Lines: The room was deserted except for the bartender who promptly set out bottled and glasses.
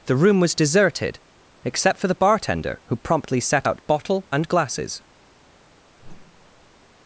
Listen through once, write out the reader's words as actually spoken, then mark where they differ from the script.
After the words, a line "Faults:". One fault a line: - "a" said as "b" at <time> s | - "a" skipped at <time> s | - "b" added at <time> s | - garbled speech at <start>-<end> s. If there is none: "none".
The room was deserted except for the bartender who promptly set out bottle and glasses.
Faults:
- "bottled" said as "bottle" at 3.9 s